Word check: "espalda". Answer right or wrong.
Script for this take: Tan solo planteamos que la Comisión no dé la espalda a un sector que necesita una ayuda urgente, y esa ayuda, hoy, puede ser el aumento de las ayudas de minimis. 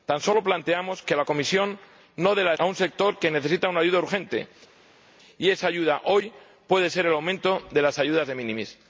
wrong